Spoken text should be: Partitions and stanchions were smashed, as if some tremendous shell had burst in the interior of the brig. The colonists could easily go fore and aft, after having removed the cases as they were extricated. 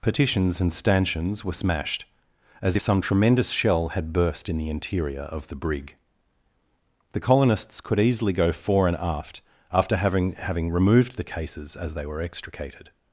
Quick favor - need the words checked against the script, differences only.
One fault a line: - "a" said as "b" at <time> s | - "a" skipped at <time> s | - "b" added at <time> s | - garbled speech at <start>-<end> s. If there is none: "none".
- "having" added at 10.3 s